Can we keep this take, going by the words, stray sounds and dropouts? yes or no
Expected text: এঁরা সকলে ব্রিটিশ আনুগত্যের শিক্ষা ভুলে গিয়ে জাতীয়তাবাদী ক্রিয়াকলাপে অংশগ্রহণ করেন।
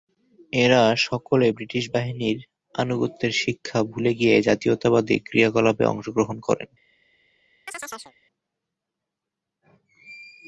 no